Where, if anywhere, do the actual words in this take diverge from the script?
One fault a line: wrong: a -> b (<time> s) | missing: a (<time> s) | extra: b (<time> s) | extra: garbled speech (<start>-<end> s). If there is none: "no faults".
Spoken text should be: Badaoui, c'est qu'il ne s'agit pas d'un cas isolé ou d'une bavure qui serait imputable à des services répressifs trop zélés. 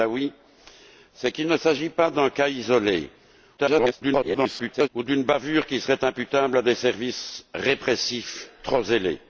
extra: garbled speech (3.6-4.9 s)